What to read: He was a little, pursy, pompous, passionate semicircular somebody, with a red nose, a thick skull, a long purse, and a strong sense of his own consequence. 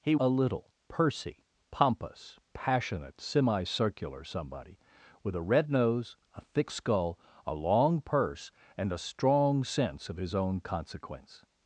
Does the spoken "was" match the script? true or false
false